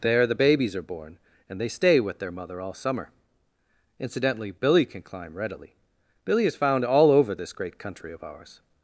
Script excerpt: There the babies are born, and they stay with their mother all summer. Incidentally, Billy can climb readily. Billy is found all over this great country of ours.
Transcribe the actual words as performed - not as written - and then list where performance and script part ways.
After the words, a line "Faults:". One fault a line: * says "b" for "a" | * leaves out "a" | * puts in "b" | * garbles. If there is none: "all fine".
There the babies are born, and they stay with their mother all summer. Incidentally, Billy can climb readily. Billy is found all over this great country of ours.
Faults:
all fine